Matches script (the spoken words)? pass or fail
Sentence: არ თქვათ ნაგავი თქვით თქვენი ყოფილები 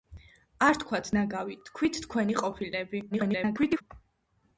fail